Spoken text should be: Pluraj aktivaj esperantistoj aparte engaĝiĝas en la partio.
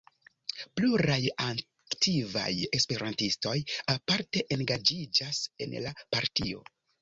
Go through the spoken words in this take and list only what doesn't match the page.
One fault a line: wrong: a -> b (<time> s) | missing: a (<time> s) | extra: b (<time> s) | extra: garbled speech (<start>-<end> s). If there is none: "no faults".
no faults